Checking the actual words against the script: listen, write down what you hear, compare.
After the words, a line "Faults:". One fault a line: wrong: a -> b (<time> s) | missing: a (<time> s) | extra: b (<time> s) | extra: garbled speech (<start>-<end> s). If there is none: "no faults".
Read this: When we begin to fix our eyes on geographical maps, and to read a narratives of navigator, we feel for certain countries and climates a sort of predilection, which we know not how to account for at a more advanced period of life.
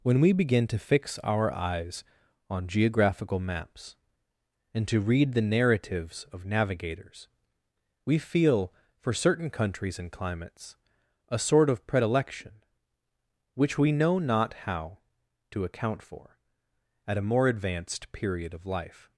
When we begin to fix our eyes on geographical maps, and to read the narratives of navigators, we feel for certain countries and climates a sort of predilection, which we know not how to account for at a more advanced period of life.
Faults:
wrong: a -> the (5.3 s)
wrong: navigator -> navigators (6.5 s)